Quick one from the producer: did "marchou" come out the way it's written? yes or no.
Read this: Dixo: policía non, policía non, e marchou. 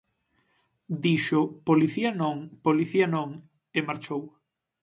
yes